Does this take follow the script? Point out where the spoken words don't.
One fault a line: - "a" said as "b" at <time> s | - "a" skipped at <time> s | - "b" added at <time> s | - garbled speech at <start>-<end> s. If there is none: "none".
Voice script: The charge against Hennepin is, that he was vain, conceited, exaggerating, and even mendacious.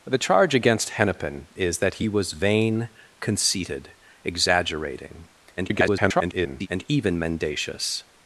- garbled speech at 5.6-6.7 s